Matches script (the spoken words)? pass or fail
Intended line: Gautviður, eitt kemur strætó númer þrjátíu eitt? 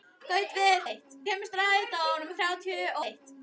pass